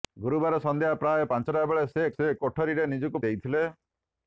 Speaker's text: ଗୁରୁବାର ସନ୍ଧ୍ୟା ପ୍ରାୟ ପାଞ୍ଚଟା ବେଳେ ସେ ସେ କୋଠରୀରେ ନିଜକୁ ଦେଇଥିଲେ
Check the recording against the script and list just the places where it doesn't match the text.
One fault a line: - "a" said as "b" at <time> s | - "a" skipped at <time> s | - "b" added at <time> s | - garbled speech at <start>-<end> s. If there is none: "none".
none